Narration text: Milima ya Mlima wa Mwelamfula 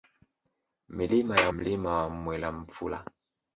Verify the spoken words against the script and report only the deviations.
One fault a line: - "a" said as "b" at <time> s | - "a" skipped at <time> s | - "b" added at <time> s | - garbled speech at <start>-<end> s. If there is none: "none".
none